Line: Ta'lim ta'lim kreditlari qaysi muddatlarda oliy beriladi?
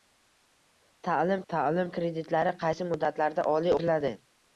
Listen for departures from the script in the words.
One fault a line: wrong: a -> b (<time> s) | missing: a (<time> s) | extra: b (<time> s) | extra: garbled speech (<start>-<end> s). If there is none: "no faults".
no faults